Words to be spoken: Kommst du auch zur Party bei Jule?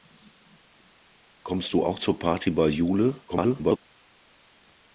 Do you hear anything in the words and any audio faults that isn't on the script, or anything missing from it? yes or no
yes